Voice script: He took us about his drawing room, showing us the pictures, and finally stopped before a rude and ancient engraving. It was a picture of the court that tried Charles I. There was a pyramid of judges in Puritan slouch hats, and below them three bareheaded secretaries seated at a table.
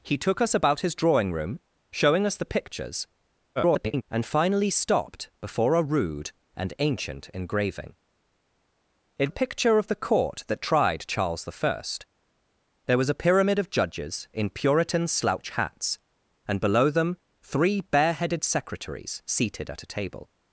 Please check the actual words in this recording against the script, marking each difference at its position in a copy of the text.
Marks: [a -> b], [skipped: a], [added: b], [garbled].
He took us about his drawing room, showing us the pictures, [garbled] and finally stopped before a rude and ancient engraving. It [skipped: was] a picture of the court that tried Charles I. There was a pyramid of judges in Puritan slouch hats, and below them three bareheaded secretaries seated at a table.